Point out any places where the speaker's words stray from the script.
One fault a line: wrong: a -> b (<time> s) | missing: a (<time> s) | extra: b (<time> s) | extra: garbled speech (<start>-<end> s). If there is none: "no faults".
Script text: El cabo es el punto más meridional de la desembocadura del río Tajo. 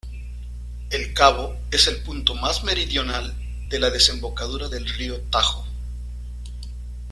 no faults